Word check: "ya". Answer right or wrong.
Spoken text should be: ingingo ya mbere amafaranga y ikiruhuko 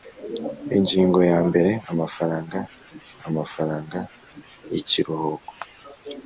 right